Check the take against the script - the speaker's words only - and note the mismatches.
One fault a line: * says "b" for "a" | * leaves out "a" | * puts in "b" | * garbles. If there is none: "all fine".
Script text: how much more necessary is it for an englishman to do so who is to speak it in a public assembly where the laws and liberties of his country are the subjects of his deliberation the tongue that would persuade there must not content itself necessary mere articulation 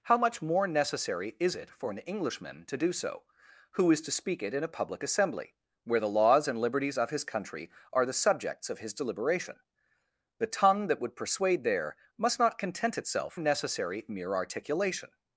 all fine